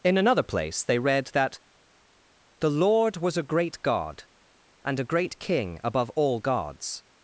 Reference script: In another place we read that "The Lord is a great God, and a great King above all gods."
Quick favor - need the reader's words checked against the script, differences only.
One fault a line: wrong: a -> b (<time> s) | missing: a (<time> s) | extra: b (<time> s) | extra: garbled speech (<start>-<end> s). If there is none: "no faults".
wrong: we -> they (0.8 s)
wrong: is -> was (3.2 s)